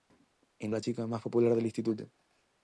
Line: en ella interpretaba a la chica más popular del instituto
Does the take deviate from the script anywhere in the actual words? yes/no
yes